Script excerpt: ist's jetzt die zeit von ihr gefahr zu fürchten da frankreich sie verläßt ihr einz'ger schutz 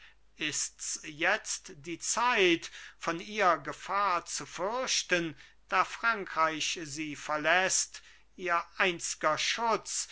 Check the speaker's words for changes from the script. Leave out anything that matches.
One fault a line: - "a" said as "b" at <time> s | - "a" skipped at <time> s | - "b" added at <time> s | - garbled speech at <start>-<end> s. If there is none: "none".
none